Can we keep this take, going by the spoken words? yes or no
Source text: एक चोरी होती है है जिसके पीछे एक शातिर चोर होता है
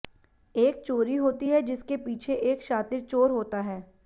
no